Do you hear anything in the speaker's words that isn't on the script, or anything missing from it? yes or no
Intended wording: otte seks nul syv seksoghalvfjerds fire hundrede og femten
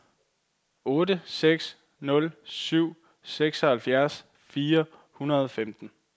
no